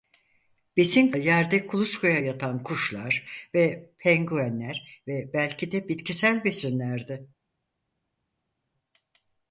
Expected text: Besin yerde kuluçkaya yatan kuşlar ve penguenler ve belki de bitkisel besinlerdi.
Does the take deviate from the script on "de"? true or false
false